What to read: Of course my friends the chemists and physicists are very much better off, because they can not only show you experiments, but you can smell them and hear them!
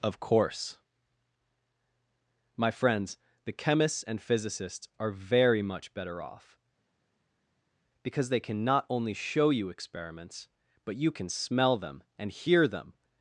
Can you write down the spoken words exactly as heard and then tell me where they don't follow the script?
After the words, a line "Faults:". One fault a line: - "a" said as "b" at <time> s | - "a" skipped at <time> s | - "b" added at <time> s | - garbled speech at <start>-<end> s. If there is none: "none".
Of course my friends the chemists and physicists are very much better off, because they can not only show you experiments, but you can smell them and hear them!
Faults:
none